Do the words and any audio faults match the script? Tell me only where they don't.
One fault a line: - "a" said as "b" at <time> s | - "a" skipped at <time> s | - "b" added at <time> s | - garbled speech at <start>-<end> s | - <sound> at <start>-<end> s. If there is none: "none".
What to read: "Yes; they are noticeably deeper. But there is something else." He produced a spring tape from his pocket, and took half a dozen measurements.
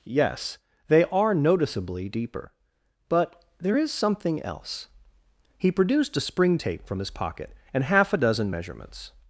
- "took" skipped at 7.8 s